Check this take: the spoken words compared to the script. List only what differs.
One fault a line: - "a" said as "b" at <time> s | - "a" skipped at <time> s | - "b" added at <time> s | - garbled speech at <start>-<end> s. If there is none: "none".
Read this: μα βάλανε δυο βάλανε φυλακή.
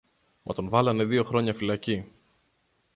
- "τον" added at 0.5 s
- "βάλανε" said as "χρόνια" at 1.2 s